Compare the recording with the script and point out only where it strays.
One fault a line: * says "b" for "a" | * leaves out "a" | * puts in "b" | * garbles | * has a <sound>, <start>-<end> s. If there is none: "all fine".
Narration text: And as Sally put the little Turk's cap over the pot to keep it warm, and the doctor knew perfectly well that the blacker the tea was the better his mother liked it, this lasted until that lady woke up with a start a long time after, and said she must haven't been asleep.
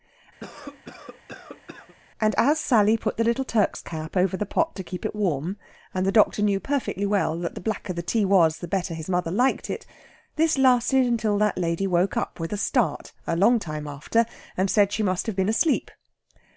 * has a cough, 0.4-1.9 s
* says "have" for "haven't"